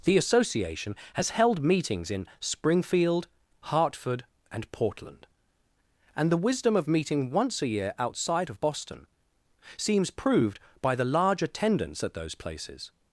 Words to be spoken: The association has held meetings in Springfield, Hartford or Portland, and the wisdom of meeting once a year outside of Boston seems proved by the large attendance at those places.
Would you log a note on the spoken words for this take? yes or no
yes